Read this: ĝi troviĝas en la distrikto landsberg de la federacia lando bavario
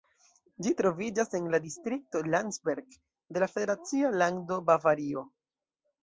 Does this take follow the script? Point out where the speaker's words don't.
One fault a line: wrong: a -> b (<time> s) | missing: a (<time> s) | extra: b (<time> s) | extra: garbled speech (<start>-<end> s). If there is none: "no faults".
no faults